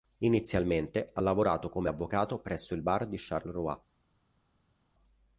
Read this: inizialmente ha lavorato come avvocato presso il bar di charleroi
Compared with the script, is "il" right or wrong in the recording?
right